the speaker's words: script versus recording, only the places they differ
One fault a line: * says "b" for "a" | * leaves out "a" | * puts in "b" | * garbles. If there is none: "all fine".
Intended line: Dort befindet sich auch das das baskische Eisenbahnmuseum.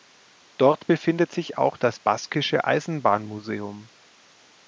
* leaves out "das"